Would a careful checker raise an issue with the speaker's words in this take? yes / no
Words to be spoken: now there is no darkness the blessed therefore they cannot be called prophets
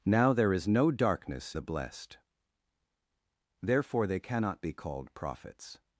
no